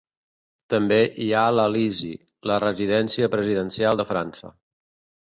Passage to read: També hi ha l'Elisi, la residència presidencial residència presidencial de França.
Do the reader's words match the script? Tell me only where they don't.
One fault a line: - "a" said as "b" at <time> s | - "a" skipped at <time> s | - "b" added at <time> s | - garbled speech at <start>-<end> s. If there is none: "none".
- "residència presidencial" skipped at 4.0 s